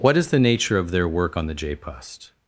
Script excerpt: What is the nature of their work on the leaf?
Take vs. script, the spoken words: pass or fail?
fail